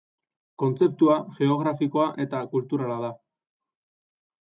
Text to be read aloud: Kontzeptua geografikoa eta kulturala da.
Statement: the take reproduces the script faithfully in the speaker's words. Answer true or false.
true